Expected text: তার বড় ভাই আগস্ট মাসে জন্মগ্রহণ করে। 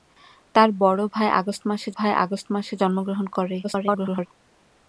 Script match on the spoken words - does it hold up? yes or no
no